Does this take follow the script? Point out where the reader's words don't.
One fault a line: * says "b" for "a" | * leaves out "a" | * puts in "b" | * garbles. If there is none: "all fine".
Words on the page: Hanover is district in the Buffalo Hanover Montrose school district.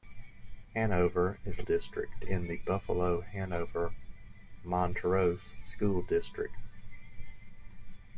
all fine